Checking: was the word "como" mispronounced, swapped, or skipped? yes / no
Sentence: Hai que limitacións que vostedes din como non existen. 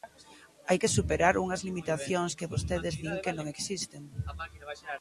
yes